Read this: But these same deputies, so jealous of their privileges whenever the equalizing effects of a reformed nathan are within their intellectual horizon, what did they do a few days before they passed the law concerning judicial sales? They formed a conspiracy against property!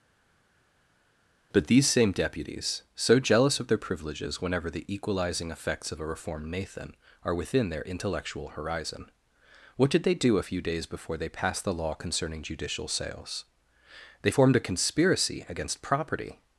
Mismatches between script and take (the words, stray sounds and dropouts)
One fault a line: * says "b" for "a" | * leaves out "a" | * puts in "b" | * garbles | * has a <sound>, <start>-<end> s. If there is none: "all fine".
all fine